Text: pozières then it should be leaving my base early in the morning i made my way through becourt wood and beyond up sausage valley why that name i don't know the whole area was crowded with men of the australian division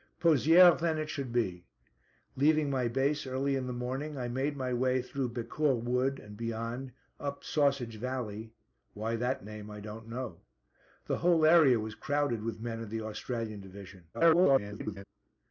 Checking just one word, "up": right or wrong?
right